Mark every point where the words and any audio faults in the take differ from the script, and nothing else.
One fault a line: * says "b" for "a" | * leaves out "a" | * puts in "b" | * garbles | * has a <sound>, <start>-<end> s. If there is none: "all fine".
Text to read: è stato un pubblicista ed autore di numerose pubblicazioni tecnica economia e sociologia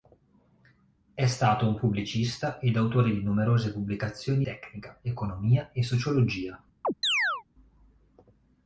* has a chirp, 6.8-7.4 s